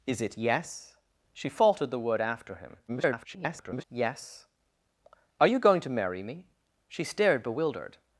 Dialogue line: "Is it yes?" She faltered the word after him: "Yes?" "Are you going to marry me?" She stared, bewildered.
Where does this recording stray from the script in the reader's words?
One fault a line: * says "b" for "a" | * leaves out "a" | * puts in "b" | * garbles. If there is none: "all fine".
* garbles